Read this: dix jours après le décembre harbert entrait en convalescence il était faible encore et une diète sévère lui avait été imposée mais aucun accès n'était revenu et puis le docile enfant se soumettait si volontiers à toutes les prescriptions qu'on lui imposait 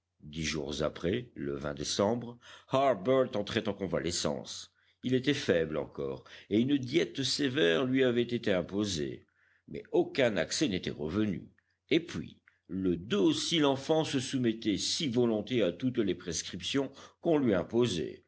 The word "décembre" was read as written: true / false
true